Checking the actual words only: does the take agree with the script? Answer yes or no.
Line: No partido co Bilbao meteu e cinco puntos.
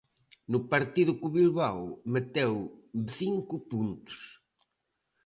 yes